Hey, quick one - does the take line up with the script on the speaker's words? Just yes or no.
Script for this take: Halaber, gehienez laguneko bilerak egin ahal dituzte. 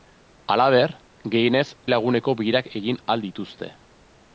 yes